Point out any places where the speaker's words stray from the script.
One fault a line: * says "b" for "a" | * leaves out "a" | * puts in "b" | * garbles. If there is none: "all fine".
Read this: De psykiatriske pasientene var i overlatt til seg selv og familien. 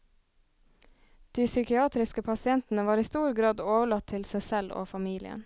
* puts in "stor grad"